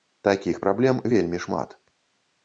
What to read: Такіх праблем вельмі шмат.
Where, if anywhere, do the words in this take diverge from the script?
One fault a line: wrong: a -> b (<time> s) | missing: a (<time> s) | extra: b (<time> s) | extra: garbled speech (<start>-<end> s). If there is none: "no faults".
no faults